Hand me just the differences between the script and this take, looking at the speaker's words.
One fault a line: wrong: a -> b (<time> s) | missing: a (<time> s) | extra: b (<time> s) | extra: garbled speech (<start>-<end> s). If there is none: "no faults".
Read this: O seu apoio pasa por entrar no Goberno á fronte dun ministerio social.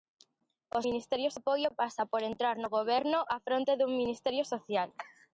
wrong: seu -> ministerio (0.9 s)